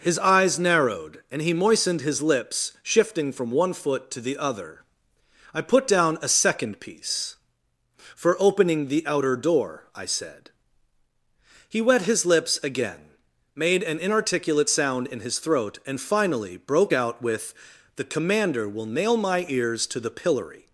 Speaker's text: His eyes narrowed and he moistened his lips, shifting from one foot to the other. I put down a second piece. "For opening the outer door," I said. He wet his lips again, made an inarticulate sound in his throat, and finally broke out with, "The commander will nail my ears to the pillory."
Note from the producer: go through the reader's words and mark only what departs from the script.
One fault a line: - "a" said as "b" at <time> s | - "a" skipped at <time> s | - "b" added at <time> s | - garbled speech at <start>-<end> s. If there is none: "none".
none